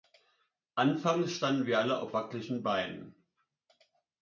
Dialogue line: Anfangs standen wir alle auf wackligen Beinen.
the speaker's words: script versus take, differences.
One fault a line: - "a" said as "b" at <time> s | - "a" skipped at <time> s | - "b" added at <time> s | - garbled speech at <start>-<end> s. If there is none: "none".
none